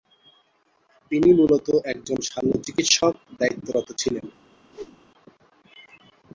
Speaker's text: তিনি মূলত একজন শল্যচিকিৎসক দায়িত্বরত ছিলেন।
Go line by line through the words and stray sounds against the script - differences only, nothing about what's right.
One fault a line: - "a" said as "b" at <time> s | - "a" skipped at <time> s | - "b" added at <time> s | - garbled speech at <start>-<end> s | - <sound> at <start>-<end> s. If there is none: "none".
- whoosh at 4.7-5.0 s